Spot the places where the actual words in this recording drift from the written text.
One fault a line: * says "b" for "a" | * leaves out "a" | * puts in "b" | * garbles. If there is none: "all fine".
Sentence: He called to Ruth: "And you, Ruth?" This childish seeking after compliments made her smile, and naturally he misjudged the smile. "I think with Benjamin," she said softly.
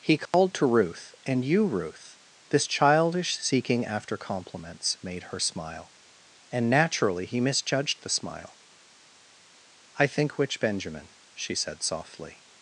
* says "which" for "with"